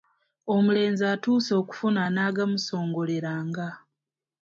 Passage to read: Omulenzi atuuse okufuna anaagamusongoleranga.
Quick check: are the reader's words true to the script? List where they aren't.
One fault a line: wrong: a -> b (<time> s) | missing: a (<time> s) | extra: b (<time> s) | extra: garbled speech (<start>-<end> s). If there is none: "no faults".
no faults